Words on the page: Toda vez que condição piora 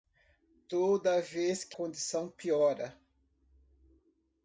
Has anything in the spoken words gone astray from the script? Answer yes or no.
no